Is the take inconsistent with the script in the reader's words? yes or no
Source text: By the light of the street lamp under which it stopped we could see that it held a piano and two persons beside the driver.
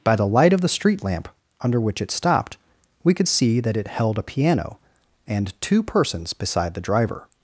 no